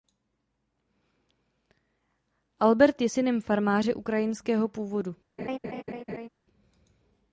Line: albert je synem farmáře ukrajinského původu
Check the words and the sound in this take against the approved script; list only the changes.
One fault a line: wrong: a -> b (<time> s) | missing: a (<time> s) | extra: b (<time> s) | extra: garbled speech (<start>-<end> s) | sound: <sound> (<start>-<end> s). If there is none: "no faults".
sound: laugh (5.4-6.3 s)